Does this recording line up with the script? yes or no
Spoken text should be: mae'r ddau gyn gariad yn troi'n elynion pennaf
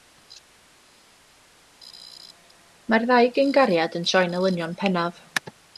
yes